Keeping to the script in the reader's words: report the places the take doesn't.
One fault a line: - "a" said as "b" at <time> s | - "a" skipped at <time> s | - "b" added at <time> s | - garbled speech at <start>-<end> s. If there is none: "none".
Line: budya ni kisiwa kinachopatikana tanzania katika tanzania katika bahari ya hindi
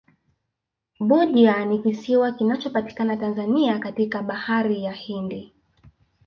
- "tanzania katika" skipped at 4.2 s